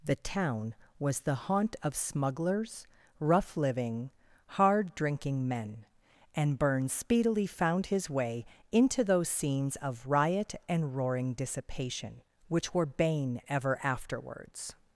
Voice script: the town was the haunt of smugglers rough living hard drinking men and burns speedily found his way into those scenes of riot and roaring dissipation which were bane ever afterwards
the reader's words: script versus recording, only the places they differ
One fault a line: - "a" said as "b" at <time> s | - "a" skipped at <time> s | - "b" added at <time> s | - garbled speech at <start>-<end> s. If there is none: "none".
none